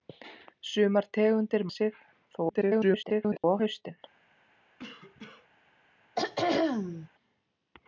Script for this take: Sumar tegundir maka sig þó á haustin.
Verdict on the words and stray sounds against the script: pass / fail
fail